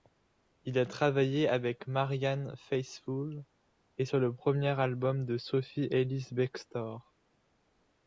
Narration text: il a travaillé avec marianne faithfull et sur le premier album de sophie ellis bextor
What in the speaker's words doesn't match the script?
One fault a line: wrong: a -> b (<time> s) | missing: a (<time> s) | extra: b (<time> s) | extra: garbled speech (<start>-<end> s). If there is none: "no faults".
no faults